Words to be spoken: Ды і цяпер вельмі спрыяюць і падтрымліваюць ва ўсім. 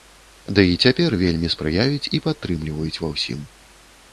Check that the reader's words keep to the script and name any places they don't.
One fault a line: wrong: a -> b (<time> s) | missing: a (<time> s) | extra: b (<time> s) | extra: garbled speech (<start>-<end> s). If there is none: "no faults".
no faults